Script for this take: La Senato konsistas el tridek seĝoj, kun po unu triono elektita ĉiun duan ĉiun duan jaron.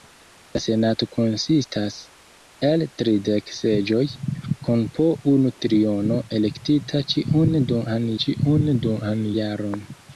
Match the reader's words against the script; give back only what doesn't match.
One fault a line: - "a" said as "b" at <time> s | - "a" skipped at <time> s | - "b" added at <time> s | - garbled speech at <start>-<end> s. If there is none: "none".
none